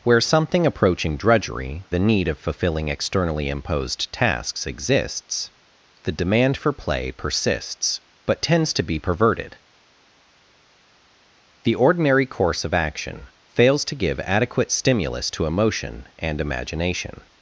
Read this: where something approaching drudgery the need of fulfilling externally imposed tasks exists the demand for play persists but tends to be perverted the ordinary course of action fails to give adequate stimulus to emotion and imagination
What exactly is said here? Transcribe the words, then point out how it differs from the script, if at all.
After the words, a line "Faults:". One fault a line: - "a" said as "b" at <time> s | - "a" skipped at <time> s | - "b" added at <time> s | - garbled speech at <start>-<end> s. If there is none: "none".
where something approaching drudgery the need of fulfilling externally imposed tasks exists the demand for play persists but tends to be perverted the ordinary course of action fails to give adequate stimulus to emotion and imagination
Faults:
none